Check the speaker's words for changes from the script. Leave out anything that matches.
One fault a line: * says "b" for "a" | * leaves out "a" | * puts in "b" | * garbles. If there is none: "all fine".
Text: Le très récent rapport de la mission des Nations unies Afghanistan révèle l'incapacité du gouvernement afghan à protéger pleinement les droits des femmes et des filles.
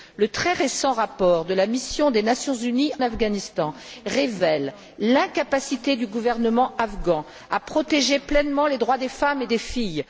all fine